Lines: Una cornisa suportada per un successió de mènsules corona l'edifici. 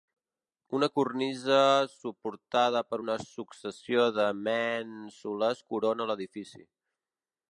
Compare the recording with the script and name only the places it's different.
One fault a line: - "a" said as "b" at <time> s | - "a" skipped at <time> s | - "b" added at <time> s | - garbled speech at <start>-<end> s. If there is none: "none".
- "un" said as "una" at 3.0 s